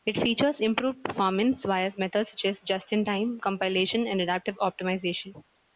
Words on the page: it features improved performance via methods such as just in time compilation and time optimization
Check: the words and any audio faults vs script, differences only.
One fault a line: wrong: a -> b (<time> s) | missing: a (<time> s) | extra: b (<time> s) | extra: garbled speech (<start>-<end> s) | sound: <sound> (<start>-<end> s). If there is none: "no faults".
wrong: time -> adaptive (4.2 s)